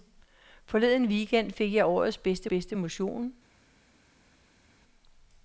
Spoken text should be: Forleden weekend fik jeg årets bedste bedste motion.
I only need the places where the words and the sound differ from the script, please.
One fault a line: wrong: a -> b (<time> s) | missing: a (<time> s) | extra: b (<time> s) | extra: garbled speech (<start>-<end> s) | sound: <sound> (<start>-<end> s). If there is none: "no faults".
no faults